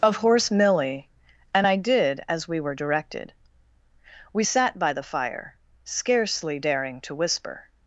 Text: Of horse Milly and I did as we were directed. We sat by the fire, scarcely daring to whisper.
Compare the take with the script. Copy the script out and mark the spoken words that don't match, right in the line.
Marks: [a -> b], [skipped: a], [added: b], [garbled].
Of horse Milly and I did as we were directed. We sat by the fire, scarcely daring to whisper.